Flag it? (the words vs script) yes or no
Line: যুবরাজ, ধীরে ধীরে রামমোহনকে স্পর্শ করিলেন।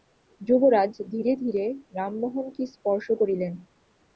no